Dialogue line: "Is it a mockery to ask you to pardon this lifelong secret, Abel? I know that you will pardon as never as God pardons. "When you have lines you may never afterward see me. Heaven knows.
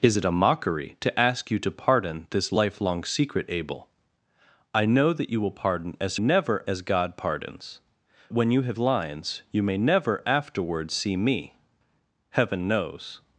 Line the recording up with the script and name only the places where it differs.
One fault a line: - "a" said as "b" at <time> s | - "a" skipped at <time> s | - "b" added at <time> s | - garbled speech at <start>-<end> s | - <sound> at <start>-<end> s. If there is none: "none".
none